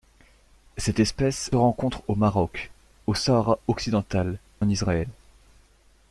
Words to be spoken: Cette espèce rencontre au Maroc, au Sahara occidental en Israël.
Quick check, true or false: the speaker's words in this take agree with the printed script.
true